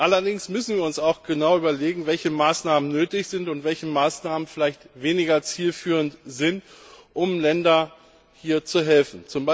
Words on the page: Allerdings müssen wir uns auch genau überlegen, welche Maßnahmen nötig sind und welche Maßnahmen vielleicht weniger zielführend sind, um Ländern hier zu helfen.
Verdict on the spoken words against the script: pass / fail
pass